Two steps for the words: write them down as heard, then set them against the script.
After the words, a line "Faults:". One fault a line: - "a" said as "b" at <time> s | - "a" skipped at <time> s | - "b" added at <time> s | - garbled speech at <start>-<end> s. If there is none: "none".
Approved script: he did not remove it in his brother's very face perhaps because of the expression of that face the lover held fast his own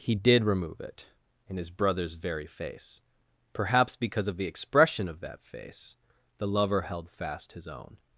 he did remove it in his brother's very face perhaps because of the expression of that face the lover held fast his own
Faults:
- "not" skipped at 0.4 s